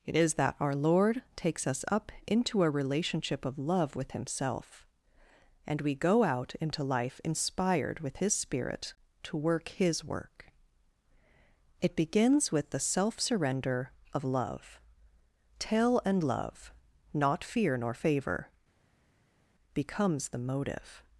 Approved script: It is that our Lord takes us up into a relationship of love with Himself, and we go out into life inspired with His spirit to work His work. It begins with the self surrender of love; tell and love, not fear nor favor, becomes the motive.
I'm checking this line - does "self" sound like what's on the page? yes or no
yes